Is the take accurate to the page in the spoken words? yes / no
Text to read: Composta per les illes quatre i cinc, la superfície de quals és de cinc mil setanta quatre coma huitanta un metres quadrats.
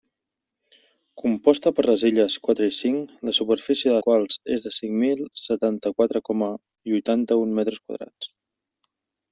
yes